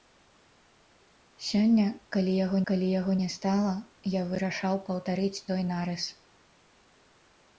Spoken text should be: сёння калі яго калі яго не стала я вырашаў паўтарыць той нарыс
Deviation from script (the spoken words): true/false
false